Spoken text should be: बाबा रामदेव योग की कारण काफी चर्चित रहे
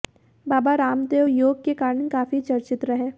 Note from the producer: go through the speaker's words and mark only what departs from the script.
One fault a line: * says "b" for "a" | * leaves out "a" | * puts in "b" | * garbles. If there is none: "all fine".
* says "के" for "की"